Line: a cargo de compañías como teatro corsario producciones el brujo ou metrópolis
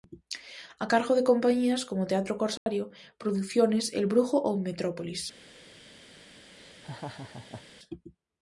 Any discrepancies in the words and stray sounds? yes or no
yes